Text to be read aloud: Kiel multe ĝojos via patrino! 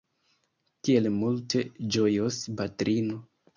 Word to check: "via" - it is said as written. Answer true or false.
false